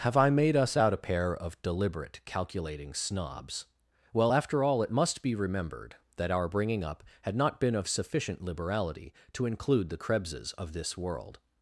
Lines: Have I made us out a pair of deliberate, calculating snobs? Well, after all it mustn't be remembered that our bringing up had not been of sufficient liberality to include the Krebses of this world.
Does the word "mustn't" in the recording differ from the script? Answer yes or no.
yes